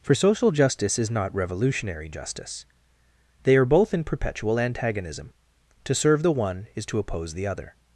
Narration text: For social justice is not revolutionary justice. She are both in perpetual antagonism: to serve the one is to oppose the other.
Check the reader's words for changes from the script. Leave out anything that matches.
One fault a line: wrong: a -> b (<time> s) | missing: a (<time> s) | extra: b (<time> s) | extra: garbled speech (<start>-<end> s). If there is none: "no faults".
wrong: She -> They (3.4 s)